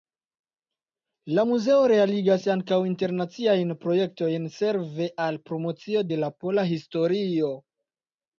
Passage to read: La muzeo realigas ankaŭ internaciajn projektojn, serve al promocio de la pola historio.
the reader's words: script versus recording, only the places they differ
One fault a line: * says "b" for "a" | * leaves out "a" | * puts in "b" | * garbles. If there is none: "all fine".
all fine